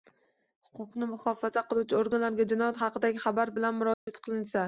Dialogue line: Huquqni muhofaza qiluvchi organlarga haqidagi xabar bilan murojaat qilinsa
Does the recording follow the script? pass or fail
fail